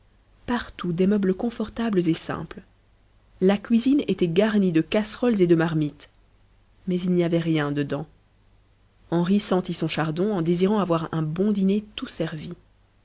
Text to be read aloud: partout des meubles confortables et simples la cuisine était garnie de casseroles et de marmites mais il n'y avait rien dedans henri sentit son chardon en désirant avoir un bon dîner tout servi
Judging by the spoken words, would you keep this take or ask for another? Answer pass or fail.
pass